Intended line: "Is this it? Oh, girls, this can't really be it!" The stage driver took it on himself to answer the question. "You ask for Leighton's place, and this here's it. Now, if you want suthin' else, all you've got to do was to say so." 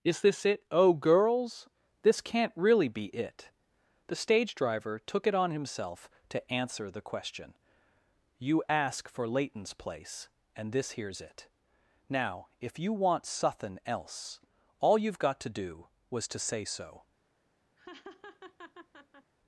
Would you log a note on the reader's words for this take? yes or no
no